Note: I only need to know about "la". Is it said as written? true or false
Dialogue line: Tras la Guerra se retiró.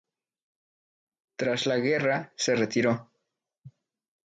true